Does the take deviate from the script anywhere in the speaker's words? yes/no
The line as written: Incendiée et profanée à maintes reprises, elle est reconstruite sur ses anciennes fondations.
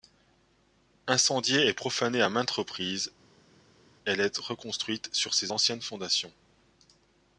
no